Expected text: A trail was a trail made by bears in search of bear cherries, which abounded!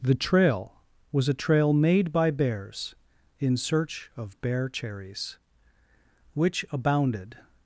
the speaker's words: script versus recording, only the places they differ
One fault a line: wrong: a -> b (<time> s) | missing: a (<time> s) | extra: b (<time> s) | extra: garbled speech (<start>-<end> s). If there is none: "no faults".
wrong: A -> The (0.0 s)